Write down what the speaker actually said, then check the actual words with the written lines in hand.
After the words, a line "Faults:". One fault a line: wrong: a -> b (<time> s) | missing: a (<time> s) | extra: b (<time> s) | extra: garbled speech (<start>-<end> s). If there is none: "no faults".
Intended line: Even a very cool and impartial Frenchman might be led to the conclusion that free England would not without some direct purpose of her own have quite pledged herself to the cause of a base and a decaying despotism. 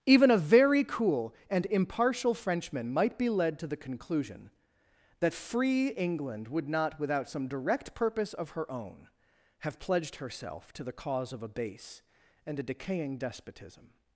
Even a very cool and impartial Frenchman might be led to the conclusion that free England would not without some direct purpose of her own have pledged herself to the cause of a base and a decaying despotism.
Faults:
missing: quite (9.8 s)